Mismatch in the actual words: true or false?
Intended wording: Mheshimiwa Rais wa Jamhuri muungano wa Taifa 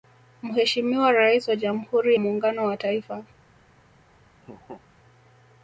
false